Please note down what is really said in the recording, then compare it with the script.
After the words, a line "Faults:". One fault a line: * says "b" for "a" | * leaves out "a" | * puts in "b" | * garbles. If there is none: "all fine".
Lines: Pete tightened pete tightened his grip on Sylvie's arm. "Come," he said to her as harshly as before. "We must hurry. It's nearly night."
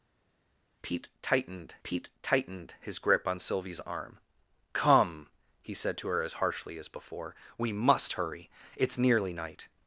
Pete tightened pete tightened his grip on Sylvie's arm. "Come," he said to her as harshly as before. "We must hurry. It's nearly night."
Faults:
all fine